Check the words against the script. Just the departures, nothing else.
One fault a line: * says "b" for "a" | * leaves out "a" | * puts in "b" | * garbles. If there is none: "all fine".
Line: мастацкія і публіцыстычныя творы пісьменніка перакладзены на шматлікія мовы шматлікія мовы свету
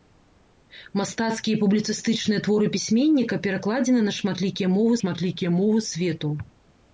all fine